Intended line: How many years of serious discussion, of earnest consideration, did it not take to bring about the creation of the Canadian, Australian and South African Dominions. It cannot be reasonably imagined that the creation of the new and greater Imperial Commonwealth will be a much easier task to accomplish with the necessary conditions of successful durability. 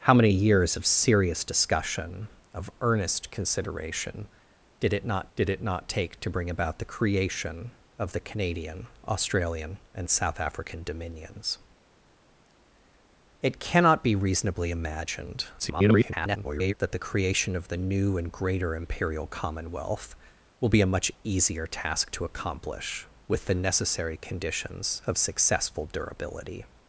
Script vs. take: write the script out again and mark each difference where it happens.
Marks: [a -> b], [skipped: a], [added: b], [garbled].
How many years of serious discussion, of earnest consideration, did it not [added: did it not] take to bring about the creation of the Canadian, Australian and South African Dominions. It cannot be reasonably imagined [garbled] that the creation of the new and greater Imperial Commonwealth will be a much easier task to accomplish with the necessary conditions of successful durability.